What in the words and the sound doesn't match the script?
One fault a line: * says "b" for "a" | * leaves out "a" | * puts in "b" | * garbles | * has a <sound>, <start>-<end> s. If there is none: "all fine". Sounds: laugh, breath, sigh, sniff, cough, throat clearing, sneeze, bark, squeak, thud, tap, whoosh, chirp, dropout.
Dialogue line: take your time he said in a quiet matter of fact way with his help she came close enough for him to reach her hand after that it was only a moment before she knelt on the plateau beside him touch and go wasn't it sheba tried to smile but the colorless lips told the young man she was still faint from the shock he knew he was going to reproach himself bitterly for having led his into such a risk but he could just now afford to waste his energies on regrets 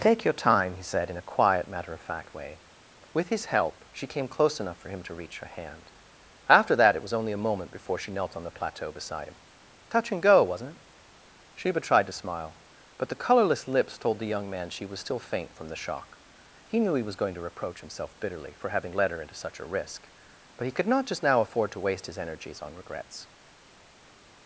* says "her" for "his"
* puts in "not"